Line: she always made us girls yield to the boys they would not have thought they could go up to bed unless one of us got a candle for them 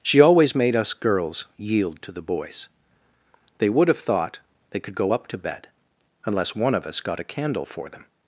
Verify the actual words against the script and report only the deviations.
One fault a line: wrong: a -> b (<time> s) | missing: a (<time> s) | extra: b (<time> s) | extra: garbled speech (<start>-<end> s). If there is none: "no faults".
missing: not (3.9 s)